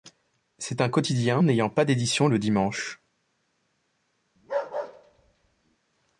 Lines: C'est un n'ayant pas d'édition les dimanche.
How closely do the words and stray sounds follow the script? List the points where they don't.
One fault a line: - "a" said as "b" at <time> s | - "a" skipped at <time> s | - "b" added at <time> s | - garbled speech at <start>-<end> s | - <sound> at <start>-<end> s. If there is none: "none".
- "quotidien" added at 0.9 s
- "les" said as "le" at 2.3 s
- bark at 4.4-5.8 s